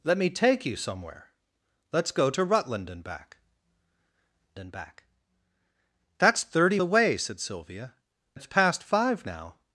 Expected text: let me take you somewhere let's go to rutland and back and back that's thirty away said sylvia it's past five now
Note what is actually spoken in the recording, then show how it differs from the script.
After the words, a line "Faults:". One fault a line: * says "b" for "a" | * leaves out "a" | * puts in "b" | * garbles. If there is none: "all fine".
let me take you somewhere let's go to rutland and back and back that's thirty away said sylvia it's past five now
Faults:
all fine